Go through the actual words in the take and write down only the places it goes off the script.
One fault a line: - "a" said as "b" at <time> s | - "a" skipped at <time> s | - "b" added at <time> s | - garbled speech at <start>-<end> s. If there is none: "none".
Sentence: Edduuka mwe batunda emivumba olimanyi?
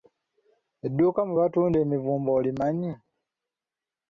none